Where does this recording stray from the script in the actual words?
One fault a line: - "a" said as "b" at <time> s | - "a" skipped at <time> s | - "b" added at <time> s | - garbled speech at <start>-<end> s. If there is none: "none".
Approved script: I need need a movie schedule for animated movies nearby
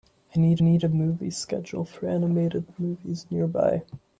none